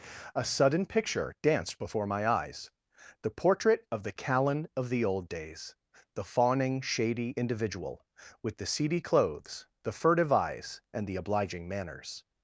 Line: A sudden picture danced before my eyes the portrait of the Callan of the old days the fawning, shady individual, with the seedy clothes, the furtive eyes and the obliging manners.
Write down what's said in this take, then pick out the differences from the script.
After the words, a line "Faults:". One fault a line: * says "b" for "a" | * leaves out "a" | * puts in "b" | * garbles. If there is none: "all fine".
A sudden picture danced before my eyes the portrait of the Callan of the old days the fawning, shady individual, with the seedy clothes, the furtive eyes and the obliging manners.
Faults:
all fine